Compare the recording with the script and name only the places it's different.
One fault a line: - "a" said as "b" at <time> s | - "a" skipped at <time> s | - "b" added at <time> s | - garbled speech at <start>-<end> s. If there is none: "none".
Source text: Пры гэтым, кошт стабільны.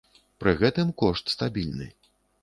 none